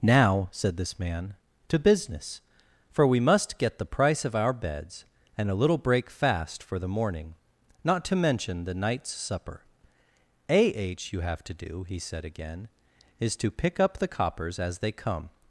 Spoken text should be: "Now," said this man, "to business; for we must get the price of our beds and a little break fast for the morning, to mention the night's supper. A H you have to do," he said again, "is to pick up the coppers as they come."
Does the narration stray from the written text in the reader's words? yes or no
yes